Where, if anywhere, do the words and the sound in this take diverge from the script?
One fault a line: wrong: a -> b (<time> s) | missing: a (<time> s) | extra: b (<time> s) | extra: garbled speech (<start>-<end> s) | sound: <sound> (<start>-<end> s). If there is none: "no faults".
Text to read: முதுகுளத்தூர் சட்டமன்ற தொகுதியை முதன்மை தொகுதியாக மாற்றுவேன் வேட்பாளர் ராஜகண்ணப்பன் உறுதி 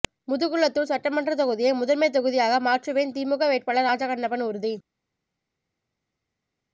extra: திமுக (3.1 s)